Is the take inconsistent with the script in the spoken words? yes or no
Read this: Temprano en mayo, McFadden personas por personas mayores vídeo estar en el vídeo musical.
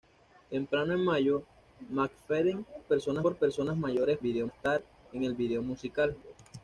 no